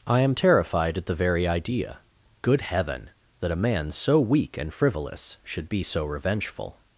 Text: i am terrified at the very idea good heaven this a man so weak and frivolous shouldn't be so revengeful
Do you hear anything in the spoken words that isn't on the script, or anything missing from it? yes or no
yes